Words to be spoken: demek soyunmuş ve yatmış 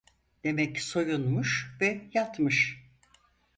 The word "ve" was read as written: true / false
true